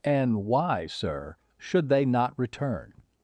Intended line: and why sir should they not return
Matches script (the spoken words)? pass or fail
pass